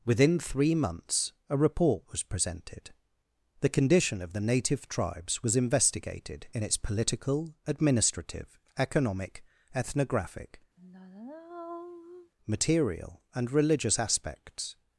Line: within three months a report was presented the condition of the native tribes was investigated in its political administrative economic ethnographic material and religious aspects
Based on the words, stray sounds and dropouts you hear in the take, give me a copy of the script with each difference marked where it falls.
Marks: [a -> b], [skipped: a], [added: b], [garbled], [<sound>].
within three months a report was presented the condition of the native tribes was investigated in its political administrative economic ethnographic [sigh] material and religious aspects